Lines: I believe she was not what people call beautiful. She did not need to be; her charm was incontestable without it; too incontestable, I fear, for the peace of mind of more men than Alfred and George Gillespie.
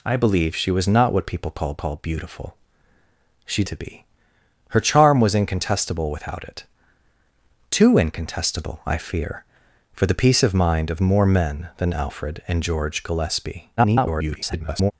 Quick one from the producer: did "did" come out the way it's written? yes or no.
no